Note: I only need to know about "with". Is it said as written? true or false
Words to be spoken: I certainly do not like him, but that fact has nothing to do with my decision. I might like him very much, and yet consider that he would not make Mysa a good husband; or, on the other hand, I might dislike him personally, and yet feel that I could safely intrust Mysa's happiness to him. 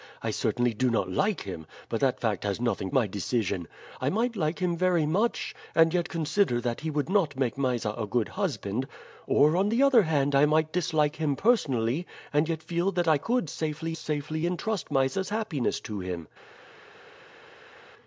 false